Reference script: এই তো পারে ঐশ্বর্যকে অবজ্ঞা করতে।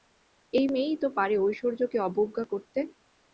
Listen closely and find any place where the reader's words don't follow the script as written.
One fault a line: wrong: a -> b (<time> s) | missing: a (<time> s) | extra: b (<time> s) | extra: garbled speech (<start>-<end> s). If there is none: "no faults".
extra: মেয়েই (0.7 s)